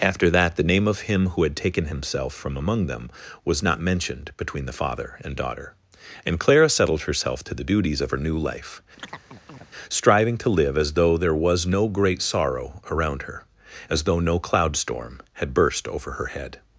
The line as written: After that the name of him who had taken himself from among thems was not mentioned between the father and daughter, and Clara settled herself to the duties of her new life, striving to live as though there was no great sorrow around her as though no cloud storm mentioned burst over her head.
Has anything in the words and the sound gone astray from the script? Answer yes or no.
yes